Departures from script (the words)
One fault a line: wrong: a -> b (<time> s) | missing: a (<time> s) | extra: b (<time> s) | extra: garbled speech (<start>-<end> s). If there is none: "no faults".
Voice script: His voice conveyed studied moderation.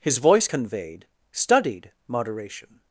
no faults